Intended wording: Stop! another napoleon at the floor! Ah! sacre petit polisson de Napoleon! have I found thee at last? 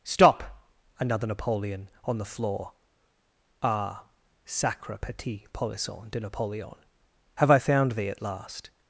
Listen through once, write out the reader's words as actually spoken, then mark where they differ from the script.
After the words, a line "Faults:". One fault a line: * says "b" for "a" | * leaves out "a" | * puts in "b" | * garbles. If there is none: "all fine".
Stop! another napoleon on the floor! Ah! sacre petit polisson de Napoleon! have I found thee at last?
Faults:
* says "on" for "at"